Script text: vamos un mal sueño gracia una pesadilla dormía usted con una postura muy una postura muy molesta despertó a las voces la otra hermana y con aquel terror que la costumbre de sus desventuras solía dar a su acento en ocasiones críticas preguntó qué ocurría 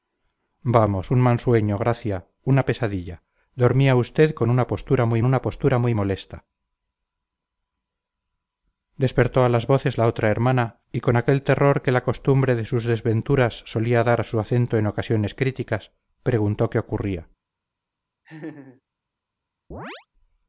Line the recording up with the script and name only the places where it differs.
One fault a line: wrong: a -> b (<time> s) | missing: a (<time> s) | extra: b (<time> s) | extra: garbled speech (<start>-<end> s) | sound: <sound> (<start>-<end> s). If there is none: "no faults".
sound: laugh (18.2-18.8 s)
sound: chirp (19.7-20.1 s)